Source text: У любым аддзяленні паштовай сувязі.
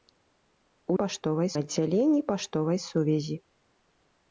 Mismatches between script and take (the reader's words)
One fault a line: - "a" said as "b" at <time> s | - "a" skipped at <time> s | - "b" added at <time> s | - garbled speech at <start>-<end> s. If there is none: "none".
- "любым" said as "паштовай" at 1.0 s